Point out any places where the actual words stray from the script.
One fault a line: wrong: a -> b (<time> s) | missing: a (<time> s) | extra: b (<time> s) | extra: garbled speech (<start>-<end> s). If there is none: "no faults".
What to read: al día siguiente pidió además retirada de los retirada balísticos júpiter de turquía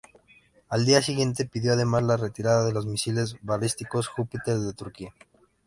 extra: la (2.0 s)
wrong: retirada -> misiles (2.9 s)